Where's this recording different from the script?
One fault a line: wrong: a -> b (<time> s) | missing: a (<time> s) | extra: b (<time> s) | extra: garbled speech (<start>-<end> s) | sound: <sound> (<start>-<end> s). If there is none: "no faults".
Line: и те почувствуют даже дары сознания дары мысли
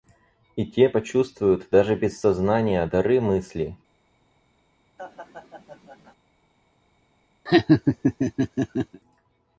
wrong: дары -> без (1.9 s)
sound: laugh (5.0-6.2 s)
sound: laugh (7.5-9.0 s)